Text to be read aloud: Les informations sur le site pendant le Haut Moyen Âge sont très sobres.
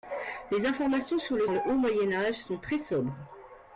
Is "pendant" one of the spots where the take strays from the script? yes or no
yes